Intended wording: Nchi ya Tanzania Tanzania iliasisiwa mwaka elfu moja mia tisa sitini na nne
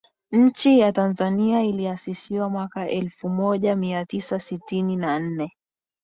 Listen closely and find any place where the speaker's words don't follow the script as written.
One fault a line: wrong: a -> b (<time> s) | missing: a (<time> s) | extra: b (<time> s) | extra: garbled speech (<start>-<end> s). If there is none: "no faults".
missing: Tanzania (1.6 s)